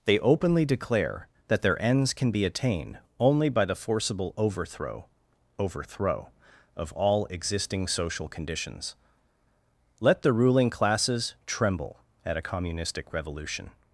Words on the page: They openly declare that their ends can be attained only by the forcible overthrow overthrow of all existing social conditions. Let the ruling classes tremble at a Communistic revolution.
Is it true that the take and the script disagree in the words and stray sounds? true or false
false